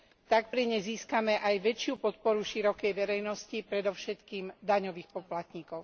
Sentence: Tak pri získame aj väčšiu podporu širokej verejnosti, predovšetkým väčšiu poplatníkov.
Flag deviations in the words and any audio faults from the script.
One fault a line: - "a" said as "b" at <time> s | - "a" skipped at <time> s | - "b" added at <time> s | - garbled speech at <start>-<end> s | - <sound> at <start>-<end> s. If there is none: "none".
- "nej" added at 0.6 s
- "väčšiu" said as "daňových" at 4.6 s